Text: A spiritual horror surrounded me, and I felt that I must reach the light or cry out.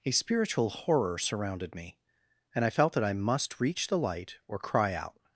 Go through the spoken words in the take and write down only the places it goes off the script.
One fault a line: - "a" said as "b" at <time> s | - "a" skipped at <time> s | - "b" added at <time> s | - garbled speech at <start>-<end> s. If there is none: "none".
none